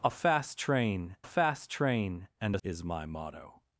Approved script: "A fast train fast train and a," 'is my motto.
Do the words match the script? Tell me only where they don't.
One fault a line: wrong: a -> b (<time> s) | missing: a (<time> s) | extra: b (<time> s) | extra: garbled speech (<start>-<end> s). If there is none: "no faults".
no faults